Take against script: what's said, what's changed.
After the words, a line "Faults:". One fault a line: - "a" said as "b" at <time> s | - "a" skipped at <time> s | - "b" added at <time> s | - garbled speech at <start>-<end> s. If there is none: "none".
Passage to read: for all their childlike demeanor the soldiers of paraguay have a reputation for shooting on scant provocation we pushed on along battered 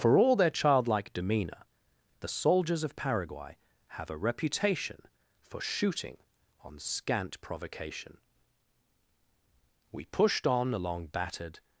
for all their childlike demeanor the soldiers of paraguay have a reputation for shooting on scant provocation we pushed on along battered
Faults:
none